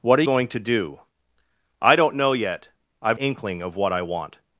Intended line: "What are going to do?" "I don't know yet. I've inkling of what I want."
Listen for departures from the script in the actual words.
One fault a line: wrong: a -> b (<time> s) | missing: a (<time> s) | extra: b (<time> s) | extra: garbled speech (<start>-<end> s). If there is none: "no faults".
no faults